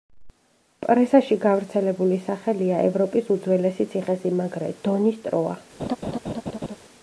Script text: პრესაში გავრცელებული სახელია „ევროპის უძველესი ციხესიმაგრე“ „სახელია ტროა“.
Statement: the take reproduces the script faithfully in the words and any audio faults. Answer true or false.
false